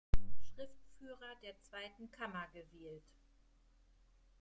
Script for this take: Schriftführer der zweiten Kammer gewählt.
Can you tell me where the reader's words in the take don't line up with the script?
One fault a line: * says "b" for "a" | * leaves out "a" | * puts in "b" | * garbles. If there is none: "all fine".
all fine